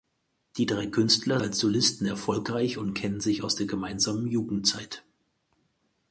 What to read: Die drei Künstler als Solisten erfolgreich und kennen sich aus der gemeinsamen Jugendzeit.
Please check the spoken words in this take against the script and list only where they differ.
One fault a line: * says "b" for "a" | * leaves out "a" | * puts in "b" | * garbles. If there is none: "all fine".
all fine